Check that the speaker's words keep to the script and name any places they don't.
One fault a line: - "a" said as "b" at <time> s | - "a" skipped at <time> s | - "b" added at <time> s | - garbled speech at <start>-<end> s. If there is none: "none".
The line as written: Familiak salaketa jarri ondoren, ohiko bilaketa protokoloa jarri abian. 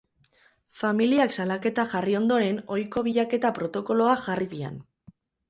none